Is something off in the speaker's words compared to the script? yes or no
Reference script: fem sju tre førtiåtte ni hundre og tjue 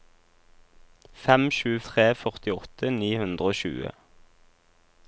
no